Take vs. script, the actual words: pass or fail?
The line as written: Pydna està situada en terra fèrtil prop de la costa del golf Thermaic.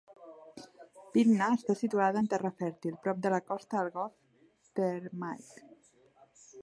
pass